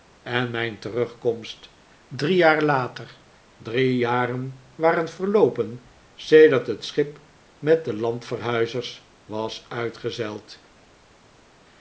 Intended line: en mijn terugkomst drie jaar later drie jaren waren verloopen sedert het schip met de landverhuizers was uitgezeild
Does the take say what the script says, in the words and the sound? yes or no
yes